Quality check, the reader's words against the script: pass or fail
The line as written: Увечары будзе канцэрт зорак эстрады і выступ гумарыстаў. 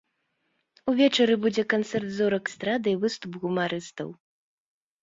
pass